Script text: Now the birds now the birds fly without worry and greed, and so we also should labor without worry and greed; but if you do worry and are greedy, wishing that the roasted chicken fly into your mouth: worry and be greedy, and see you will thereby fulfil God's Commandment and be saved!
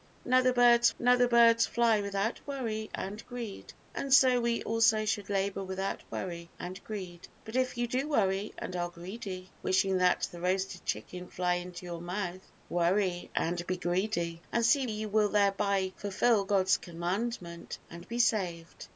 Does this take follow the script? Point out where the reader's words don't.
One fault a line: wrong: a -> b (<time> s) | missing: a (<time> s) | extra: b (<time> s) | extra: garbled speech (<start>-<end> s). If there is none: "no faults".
no faults